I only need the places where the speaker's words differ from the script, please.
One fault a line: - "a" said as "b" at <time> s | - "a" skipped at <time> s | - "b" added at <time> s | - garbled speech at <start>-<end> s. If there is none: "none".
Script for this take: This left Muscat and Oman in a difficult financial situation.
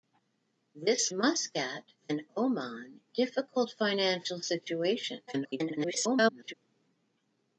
- "left" skipped at 1.1 s
- "in a" skipped at 3.0 s
- garbled speech at 5.3-6.5 s